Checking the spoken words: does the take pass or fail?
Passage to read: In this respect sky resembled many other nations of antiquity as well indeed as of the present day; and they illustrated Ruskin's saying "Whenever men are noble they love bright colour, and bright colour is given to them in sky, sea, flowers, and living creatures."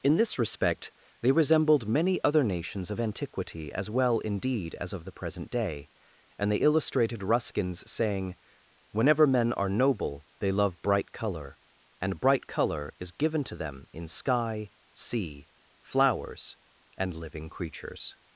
fail